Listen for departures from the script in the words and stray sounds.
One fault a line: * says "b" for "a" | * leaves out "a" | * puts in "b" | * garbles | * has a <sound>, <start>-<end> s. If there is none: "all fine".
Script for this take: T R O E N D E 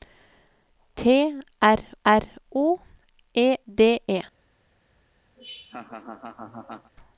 * puts in "R"
* leaves out "N"
* has a laugh, 5.4-6.9 s